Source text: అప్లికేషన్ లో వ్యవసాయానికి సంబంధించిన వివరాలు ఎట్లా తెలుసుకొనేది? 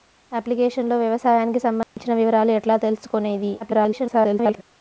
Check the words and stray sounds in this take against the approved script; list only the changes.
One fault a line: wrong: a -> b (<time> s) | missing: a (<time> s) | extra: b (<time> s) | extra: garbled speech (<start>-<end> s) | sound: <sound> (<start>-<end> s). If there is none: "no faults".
sound: dropout (1.8-2.0 s)
extra: garbled speech (3.6-4.6 s)